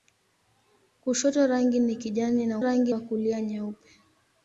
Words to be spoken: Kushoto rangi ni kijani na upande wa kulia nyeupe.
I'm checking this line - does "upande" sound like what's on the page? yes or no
no